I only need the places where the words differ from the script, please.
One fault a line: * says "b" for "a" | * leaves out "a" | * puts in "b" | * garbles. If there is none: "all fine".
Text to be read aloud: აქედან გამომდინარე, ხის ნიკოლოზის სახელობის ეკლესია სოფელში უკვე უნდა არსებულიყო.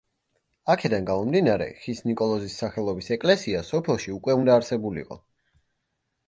all fine